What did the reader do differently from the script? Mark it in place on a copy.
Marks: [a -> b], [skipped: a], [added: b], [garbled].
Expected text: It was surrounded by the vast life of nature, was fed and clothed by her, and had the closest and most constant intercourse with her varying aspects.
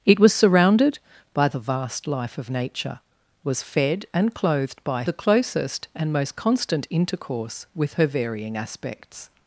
It was surrounded by the vast life of nature, was fed and clothed by [skipped: her, and had] the closest and most constant intercourse with her varying aspects.